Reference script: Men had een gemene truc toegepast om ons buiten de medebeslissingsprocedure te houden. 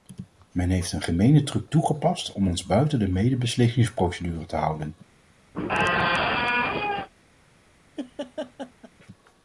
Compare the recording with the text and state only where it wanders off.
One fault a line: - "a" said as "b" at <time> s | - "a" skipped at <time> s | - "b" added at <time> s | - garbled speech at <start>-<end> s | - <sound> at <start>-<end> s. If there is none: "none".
- "had" said as "heeft" at 0.7 s
- squeak at 5.5-7.1 s
- laugh at 8.0-8.9 s